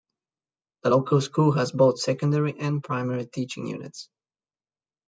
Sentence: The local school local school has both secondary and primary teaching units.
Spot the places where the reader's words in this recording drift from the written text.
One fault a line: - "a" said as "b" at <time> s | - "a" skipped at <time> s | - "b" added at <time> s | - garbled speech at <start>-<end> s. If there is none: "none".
- "local school" skipped at 1.5 s